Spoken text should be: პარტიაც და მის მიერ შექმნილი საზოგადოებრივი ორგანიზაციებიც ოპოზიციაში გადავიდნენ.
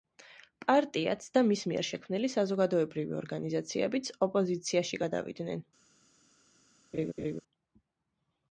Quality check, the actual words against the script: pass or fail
pass